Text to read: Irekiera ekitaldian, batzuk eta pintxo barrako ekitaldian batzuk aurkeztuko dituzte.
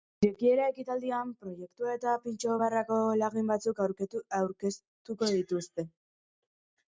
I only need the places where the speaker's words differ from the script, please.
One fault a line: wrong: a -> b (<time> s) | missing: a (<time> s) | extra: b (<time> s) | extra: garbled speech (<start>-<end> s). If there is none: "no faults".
wrong: batzuk -> proiektua (1.4 s)
wrong: ekitaldian -> lagin (3.2 s)